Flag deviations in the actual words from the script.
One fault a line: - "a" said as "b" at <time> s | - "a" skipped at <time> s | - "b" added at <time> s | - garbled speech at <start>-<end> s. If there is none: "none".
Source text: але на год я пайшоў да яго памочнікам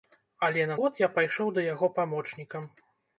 none